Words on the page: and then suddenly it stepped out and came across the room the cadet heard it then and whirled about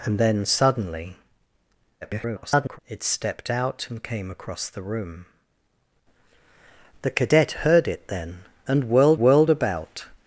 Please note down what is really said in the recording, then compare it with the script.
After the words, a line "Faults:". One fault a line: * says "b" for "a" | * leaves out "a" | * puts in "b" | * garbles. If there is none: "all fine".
and then suddenly [garbled] it stepped out and came across the room the cadet heard it then and whirled whirled about
Faults:
* garbles
* puts in "whirled"